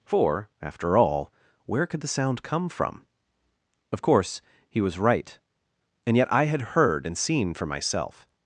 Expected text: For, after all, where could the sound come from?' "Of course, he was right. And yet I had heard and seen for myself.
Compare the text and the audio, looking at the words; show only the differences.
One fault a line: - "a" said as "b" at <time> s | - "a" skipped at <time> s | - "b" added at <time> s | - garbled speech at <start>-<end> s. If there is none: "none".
none